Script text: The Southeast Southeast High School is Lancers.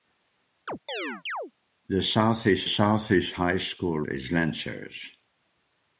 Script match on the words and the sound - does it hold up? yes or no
no